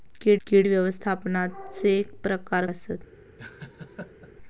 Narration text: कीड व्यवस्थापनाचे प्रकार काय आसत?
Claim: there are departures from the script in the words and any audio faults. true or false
true